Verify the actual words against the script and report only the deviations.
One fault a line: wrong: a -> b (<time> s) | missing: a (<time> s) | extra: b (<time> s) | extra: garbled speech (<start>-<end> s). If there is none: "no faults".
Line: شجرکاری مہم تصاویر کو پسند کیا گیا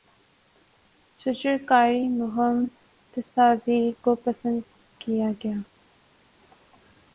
no faults